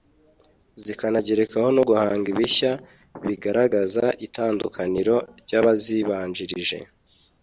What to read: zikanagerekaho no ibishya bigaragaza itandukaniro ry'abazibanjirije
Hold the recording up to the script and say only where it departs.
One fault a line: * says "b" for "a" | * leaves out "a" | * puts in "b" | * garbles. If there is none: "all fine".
* puts in "guhanga"